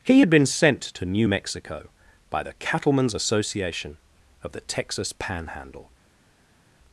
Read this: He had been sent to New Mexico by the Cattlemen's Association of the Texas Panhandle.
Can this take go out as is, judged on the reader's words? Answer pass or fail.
pass